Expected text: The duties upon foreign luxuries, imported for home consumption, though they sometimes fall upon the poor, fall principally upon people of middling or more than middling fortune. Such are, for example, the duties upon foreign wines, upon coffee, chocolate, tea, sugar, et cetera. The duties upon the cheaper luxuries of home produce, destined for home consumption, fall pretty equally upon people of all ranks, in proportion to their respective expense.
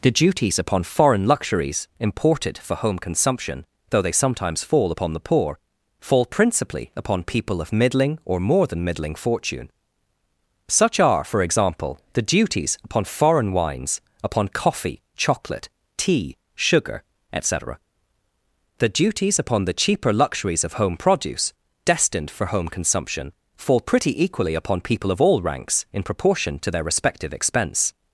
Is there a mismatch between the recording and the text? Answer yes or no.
no